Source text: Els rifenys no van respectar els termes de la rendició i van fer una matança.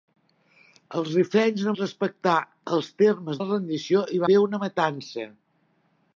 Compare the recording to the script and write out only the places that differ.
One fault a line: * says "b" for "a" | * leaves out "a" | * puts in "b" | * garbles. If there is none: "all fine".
* leaves out "van"
* leaves out "de"
* leaves out "van"